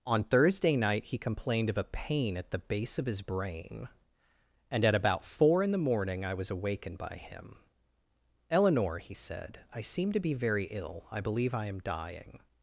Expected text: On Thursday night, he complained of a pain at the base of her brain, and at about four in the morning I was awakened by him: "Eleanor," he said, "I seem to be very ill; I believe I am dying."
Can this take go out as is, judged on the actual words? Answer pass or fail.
fail